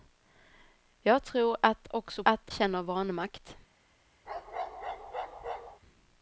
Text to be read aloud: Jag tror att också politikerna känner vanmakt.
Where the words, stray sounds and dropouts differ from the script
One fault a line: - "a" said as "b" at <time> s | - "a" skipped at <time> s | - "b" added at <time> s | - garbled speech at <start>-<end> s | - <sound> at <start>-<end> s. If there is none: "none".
- "politikerna" said as "att" at 2.2 s
- bark at 4.3-5.8 s